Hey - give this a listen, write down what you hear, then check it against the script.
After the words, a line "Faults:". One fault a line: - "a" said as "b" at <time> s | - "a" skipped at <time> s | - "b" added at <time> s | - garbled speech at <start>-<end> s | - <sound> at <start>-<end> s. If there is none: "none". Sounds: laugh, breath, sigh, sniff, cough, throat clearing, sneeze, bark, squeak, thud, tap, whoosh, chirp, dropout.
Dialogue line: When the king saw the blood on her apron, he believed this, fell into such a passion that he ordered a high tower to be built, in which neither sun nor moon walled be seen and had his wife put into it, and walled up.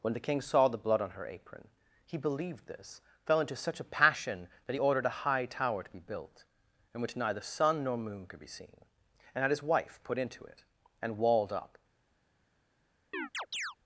When the king saw the blood on her apron, he believed this, fell into such a passion that he ordered a high tower to be built, in which neither sun nor moon could be seen and had his wife put into it, and walled up.
Faults:
- "walled" said as "could" at 8.3 s
- chirp at 13.1-13.8 s